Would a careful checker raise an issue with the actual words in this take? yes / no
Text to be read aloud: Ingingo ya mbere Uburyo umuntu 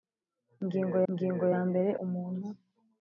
yes